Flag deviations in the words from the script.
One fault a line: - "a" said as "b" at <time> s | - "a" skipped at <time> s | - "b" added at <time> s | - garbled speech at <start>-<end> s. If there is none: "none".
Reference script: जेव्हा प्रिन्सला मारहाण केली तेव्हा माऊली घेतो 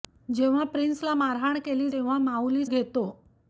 none